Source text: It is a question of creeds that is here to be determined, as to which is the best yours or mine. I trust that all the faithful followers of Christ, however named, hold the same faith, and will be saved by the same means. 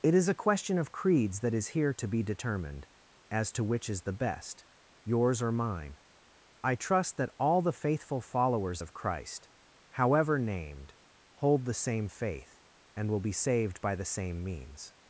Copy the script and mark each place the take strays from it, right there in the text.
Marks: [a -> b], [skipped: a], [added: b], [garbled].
It is a question of creeds that is here to be determined, as to which is the best yours or mine. I trust that all the faithful followers of Christ, however named, hold the same faith, and will be saved by the same means.